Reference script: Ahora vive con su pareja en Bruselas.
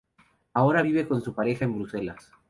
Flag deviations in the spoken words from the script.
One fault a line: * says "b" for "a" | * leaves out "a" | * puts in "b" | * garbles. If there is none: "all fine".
all fine